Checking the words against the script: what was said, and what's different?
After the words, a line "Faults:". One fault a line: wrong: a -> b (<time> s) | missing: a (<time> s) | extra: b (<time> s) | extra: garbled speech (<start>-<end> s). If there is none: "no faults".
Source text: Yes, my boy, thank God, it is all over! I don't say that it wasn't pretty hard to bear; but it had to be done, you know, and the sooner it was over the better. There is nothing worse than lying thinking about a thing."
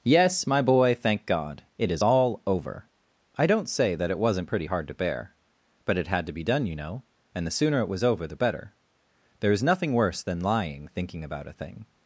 Yes, my boy, thank God, it is all over! I don't say that it wasn't pretty hard to bear; but it had to be done, you know, and the sooner it was over the better. There is nothing worse than lying thinking about a thing."
Faults:
no faults